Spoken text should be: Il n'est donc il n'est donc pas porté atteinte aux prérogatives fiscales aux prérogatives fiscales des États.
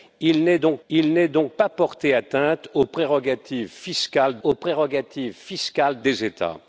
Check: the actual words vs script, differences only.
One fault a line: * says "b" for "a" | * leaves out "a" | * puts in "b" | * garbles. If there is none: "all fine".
all fine